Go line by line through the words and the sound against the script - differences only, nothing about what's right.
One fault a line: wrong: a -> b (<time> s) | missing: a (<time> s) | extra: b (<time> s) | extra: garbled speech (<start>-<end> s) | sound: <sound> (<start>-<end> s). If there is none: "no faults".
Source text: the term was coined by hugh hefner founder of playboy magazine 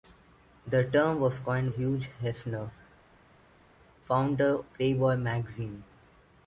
missing: by (1.8 s)
missing: of (4.6 s)